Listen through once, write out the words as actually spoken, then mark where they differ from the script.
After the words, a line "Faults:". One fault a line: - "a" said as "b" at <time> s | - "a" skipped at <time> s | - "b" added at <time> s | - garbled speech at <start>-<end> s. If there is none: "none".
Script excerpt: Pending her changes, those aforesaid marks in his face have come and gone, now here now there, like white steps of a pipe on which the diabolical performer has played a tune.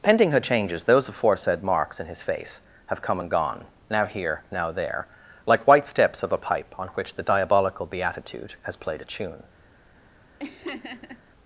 Pending her changes, those aforesaid marks in his face have come and gone, now here now there, like white steps of a pipe on which the diabolical beatitude has played a tune.
Faults:
- "performer" said as "beatitude" at 7.9 s